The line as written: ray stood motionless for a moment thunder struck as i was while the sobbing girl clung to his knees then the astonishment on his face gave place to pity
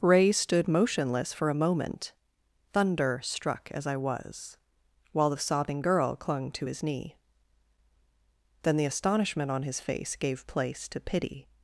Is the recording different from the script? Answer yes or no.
yes